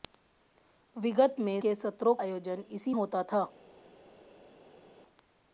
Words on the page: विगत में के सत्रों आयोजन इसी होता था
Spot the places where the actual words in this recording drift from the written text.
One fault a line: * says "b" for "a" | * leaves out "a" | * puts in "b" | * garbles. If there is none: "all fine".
all fine